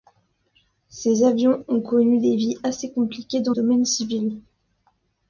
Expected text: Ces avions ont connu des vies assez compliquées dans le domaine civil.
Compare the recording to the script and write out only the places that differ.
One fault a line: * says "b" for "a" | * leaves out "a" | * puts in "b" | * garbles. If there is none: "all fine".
* leaves out "le"